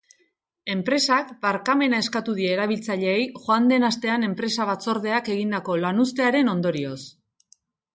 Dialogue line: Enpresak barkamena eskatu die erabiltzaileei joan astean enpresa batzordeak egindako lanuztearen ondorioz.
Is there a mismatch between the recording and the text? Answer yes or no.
yes